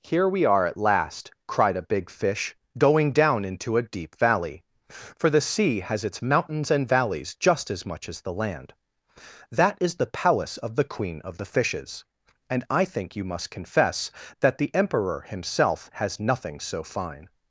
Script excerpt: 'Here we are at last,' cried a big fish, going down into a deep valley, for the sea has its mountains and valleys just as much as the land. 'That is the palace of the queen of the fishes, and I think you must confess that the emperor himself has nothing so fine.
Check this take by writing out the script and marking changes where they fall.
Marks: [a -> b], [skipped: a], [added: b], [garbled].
'Here we are at last,' cried a big fish, going down into a deep valley, for the sea has its mountains and valleys just as much as the land. 'That is the palace of the queen of the fishes, and I think you must confess that the emperor himself has nothing so fine.